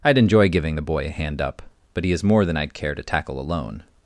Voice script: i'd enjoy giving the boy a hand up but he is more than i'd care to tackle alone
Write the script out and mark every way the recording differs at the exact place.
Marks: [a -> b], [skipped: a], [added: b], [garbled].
i'd enjoy giving the boy a hand up but he is more than i'd care to tackle alone